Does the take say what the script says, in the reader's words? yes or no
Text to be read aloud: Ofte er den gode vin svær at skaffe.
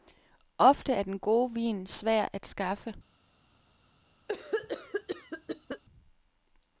yes